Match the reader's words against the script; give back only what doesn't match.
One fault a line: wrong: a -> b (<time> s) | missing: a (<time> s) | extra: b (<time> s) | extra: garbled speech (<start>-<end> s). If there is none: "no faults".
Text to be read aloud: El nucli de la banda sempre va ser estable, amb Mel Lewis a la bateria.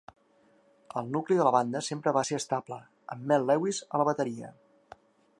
no faults